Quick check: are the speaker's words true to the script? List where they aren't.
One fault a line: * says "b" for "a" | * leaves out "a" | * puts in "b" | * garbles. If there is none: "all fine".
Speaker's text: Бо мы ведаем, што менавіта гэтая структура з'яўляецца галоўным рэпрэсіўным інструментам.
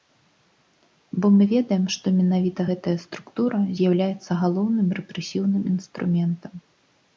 all fine